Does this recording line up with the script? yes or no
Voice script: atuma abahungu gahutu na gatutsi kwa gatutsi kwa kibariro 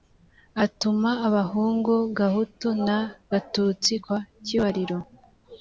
no